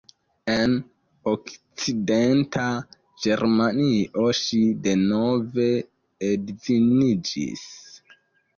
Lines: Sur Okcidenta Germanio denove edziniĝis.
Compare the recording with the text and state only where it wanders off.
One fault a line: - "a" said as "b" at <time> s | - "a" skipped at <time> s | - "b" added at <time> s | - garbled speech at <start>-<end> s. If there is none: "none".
- "Sur" said as "En" at 0.5 s
- "ŝi" added at 4.4 s